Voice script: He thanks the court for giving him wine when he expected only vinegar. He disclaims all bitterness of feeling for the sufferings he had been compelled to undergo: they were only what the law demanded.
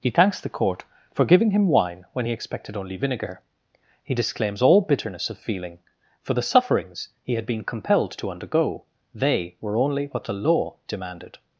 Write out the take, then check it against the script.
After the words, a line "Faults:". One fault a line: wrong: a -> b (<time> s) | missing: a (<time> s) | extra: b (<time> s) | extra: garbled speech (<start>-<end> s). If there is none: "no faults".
He thanks the court for giving him wine when he expected only vinegar. He disclaims all bitterness of feeling for the sufferings he had been compelled to undergo: they were only what the law demanded.
Faults:
no faults